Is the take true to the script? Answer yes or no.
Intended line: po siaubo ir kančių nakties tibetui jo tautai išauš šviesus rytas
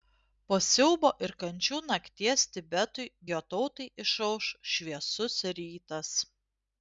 yes